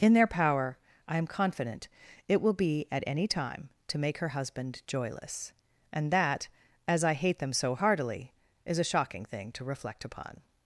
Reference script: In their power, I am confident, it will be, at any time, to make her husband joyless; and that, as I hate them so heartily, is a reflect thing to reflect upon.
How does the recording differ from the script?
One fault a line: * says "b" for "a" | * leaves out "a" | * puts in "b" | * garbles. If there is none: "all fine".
* says "shocking" for "reflect"